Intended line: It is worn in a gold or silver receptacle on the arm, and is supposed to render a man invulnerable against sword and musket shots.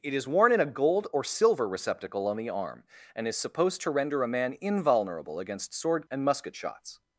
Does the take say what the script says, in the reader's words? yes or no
yes